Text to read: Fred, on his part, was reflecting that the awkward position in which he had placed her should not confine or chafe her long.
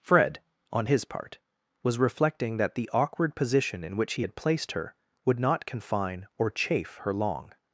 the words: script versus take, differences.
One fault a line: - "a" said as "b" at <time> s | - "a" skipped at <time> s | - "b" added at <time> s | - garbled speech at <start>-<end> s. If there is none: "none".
- "should" said as "would" at 5.2 s